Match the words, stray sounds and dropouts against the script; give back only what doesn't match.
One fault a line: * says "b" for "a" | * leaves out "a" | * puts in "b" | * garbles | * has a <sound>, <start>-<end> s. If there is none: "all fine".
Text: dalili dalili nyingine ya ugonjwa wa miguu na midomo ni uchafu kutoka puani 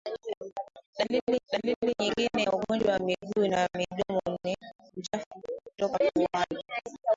all fine